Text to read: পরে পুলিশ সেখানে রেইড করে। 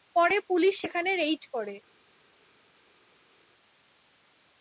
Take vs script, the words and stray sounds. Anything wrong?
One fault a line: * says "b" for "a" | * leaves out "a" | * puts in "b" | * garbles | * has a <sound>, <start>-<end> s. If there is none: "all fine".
all fine